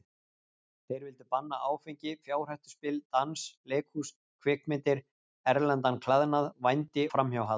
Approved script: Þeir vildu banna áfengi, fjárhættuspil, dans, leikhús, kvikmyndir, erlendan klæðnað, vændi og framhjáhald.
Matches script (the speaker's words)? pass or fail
fail